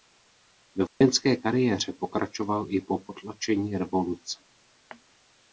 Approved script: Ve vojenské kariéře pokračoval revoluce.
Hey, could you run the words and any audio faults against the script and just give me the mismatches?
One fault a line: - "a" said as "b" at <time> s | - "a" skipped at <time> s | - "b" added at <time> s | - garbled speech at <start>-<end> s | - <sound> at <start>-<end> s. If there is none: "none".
- dropout at 0.9-1.0 s
- "i po potlačení" added at 2.7 s